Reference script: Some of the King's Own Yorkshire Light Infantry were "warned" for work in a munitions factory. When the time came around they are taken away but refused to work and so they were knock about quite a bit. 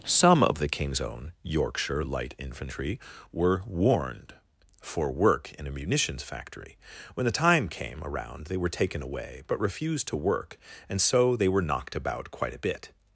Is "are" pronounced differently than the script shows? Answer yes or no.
yes